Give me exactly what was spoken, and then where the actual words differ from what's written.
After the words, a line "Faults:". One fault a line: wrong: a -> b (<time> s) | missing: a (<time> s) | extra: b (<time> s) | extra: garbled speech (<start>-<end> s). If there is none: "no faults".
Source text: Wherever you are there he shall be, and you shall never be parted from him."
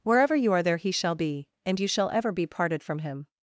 Wherever you are there he shall be, and you shall ever be parted from him."
Faults:
wrong: never -> ever (2.1 s)